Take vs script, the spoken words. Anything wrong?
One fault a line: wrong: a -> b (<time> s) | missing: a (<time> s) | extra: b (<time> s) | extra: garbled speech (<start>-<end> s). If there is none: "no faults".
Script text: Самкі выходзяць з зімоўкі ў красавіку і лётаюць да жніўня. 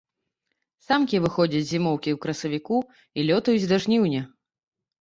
no faults